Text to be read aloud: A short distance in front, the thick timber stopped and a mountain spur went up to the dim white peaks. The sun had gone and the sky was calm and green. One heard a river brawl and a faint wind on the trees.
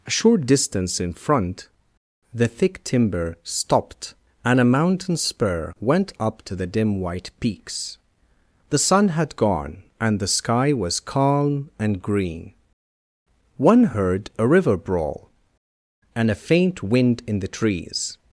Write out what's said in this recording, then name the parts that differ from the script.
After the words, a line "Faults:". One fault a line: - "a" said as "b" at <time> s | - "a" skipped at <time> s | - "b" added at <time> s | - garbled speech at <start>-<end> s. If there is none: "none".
A short distance in front, the thick timber stopped and a mountain spur went up to the dim white peaks. The sun had gone and the sky was calm and green. One heard a river brawl and a faint wind in the trees.
Faults:
- "on" said as "in" at 17.3 s